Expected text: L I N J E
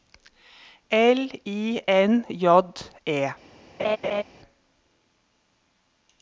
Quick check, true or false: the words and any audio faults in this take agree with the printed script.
false